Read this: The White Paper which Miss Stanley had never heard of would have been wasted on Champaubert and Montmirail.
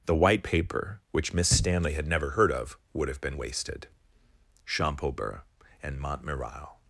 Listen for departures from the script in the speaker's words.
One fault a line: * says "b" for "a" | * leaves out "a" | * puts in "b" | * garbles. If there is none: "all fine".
* leaves out "on"